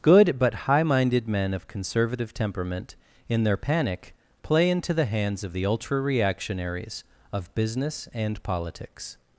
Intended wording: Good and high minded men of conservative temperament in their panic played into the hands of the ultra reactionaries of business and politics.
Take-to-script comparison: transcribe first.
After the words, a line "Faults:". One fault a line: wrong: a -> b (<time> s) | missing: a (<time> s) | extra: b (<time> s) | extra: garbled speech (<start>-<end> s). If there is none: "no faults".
Good but high minded men of conservative temperament in their panic play into the hands of the ultra reactionaries of business and politics.
Faults:
wrong: and -> but (0.4 s)
wrong: played -> play (4.4 s)